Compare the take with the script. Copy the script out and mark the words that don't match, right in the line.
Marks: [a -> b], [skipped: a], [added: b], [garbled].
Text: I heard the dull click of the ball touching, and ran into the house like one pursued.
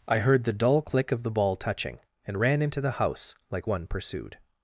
I heard the dull click of the ball touching, and ran into the house like one pursued.